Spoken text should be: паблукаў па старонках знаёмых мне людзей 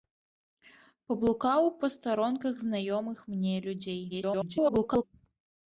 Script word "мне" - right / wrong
right